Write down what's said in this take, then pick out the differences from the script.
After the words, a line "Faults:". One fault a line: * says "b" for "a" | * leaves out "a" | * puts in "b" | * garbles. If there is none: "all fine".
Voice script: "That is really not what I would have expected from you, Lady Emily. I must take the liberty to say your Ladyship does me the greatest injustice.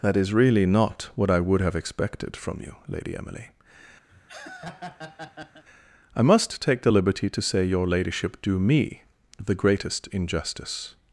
"That is really not what I would have expected from you, Lady Emily. I must take the liberty to say your Ladyship do me the greatest injustice.
Faults:
* says "do" for "does"